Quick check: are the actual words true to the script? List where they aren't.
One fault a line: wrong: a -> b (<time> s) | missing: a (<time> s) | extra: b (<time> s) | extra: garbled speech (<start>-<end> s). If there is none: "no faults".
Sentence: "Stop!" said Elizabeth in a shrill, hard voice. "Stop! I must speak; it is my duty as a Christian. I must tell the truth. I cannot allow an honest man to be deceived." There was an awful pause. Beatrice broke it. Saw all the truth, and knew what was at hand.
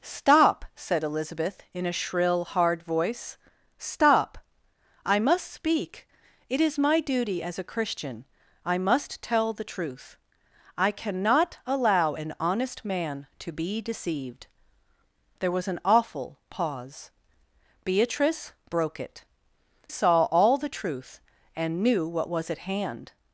no faults